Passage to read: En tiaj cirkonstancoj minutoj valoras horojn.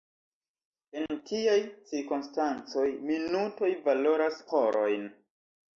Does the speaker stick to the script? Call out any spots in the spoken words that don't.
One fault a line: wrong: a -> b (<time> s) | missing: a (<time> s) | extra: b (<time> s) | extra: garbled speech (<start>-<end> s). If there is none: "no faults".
no faults